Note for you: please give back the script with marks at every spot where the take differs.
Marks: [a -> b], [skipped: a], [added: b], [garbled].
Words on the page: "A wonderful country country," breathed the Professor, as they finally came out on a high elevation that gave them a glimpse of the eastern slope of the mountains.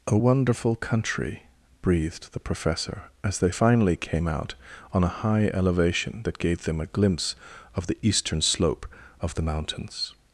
"A wonderful country [skipped: country,"] breathed the Professor, as they finally came out on a high elevation that gave them a glimpse of the eastern slope of the mountains.